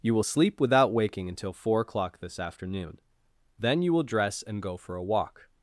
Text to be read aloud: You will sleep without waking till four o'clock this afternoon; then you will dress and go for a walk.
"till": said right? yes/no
no